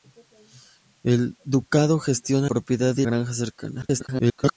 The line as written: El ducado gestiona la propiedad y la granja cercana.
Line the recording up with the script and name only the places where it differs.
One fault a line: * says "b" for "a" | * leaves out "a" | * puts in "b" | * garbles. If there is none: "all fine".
* leaves out "la"
* leaves out "la"
* garbles